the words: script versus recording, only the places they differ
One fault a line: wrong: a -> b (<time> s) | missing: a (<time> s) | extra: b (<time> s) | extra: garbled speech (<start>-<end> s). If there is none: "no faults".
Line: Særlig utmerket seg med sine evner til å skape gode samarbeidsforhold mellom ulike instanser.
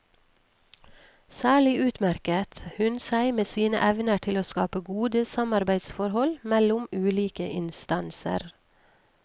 extra: hun (2.8 s)